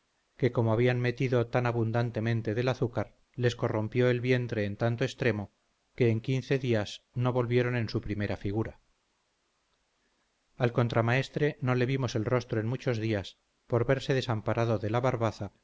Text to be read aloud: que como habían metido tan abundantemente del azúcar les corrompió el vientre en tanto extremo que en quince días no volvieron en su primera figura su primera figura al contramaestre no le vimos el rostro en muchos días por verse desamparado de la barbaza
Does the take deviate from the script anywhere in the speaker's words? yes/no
yes